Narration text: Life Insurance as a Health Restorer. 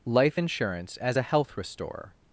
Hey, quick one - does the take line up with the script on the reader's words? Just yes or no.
yes